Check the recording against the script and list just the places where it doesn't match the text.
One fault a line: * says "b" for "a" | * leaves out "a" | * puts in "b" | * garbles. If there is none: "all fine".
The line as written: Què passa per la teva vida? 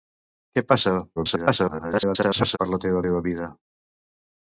* garbles
* puts in "teva"